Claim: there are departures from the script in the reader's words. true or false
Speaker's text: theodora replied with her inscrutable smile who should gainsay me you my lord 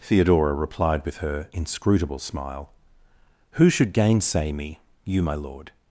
false